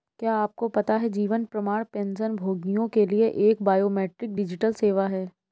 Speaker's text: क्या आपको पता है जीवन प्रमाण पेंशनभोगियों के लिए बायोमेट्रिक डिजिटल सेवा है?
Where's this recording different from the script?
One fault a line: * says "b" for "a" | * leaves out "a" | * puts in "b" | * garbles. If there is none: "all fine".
* puts in "एक"